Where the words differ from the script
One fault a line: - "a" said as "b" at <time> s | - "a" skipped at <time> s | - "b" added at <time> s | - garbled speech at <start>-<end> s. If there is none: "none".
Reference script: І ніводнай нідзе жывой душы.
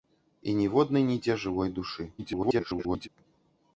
- garbled speech at 2.2-3.1 s